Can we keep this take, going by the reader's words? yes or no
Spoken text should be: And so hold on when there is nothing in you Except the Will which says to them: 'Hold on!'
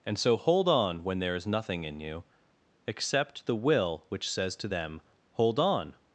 yes